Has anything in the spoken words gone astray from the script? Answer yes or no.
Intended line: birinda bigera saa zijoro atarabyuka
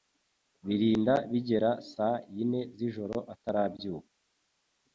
yes